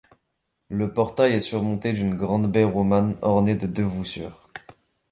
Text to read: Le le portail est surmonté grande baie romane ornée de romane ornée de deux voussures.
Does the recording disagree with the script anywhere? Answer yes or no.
yes